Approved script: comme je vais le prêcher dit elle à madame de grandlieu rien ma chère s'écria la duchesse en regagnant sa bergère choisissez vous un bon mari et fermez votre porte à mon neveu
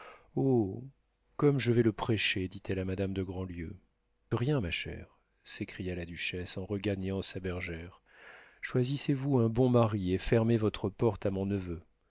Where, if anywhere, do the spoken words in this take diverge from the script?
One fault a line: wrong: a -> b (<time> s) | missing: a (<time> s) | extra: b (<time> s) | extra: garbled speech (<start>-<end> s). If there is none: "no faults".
no faults